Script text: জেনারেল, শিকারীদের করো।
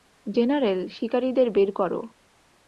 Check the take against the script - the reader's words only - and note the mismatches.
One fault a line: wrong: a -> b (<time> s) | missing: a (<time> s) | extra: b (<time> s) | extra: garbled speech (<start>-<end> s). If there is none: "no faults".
extra: বের (1.5 s)